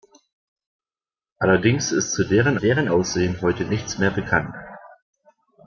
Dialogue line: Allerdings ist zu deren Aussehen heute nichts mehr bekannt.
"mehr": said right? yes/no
yes